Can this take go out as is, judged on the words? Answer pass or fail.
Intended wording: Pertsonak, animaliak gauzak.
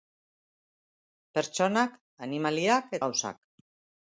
pass